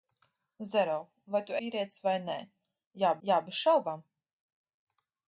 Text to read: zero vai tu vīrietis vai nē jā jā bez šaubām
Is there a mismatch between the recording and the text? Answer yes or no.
no